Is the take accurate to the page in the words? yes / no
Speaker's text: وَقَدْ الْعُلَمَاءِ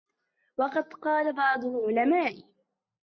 no